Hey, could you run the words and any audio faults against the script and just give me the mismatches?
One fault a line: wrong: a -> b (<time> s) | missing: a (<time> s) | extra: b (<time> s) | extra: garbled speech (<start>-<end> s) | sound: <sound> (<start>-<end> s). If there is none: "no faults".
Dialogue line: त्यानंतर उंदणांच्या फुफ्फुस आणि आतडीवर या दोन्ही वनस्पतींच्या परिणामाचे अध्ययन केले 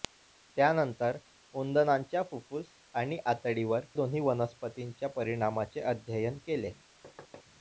missing: या (3.9 s)
sound: thud (7.0-7.4 s)